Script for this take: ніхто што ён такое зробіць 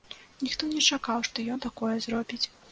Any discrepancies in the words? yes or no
yes